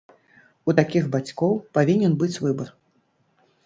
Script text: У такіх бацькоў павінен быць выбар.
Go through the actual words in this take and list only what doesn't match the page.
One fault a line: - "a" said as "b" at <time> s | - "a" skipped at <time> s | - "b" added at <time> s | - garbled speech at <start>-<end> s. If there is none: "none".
none